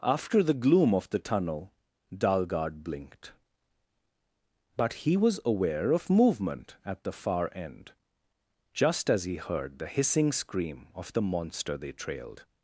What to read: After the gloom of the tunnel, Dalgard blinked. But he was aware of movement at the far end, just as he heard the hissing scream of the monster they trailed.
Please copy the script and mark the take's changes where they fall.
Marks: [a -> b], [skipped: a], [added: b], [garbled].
After the gloom of the tunnel, Dalgard blinked. But he was aware of movement at the far end, just as he heard the hissing scream of the monster they trailed.